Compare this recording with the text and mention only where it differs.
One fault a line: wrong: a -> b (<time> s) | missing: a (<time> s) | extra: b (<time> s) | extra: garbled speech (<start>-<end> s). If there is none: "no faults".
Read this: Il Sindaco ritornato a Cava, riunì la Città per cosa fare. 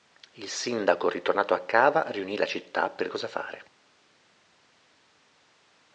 no faults